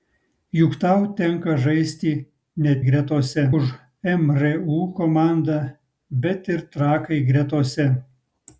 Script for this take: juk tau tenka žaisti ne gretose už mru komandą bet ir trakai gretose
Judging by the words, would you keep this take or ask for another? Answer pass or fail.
pass